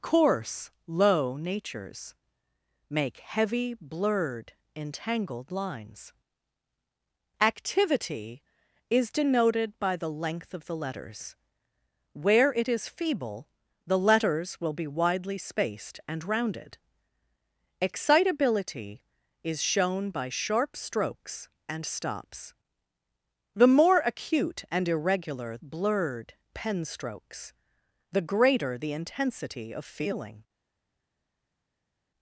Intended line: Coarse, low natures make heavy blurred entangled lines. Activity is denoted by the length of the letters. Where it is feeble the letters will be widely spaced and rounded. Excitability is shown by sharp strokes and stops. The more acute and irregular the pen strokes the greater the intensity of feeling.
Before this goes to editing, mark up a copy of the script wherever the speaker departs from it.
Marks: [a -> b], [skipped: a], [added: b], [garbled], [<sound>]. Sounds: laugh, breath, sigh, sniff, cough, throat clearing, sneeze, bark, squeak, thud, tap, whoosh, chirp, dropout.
Coarse, low natures make heavy blurred entangled lines. Activity is denoted by the length of the letters. Where it is feeble the letters will be widely spaced and rounded. Excitability is shown by sharp strokes and stops. The more acute and irregular [the -> blurred] pen strokes the greater the intensity of feeling.